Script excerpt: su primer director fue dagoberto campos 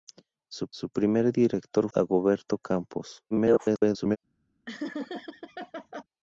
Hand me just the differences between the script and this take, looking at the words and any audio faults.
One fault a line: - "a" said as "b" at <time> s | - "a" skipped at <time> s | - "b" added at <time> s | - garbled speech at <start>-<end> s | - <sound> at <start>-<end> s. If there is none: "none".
- "su" added at 0.7 s
- "fue" skipped at 1.9 s
- garbled speech at 3.3-4.2 s
- laugh at 4.7-6.0 s